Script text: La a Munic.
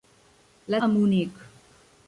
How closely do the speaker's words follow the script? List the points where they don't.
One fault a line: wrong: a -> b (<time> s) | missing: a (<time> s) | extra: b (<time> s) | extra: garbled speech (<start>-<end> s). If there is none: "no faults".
no faults